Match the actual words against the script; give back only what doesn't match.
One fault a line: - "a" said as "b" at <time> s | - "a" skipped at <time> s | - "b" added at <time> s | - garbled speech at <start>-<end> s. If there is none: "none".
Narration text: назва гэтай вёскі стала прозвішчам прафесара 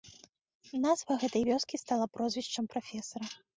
none